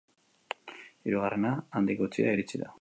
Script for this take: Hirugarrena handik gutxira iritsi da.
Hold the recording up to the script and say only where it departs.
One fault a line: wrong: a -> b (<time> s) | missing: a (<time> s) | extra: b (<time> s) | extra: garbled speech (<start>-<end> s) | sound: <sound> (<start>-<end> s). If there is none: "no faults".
no faults